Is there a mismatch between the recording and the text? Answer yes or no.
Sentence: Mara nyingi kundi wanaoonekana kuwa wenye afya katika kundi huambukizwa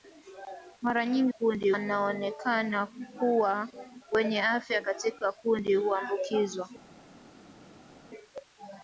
no